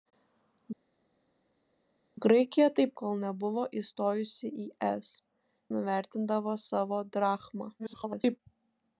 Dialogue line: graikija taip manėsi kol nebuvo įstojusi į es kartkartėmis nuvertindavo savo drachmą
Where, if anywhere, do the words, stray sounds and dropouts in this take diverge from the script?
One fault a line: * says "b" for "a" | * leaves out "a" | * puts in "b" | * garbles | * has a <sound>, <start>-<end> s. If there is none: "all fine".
* leaves out "manėsi"
* leaves out "kartkartėmis"
* garbles